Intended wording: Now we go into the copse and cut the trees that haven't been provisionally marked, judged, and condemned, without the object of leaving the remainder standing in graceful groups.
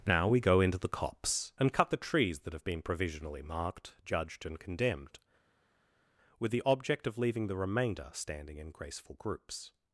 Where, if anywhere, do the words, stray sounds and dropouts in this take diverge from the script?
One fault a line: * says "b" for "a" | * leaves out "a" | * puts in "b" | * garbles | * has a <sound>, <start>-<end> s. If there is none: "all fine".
* says "have" for "haven't"
* says "with" for "without"